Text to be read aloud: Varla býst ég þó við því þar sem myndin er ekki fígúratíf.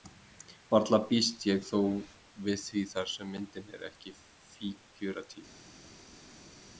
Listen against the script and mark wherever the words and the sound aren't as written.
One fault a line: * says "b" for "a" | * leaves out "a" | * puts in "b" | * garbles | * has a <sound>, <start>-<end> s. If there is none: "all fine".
all fine